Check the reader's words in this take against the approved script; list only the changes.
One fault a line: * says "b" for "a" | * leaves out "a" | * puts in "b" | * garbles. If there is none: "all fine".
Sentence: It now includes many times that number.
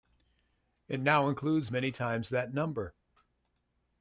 all fine